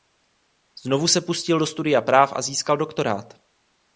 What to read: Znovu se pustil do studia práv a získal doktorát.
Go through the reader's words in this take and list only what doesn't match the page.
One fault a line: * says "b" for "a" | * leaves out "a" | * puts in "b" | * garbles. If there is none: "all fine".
all fine